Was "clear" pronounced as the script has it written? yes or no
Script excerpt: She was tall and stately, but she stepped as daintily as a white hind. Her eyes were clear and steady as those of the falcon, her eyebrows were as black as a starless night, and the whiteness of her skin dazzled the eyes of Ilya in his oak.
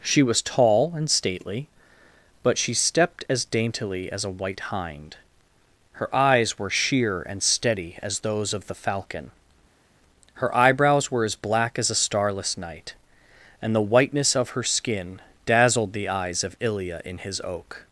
no